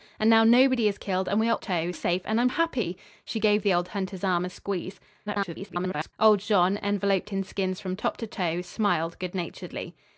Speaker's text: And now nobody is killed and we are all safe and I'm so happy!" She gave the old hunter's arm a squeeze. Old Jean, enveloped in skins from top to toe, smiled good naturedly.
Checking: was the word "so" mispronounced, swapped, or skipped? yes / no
yes